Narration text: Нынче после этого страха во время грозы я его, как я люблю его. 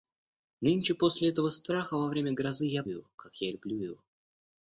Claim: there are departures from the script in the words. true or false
false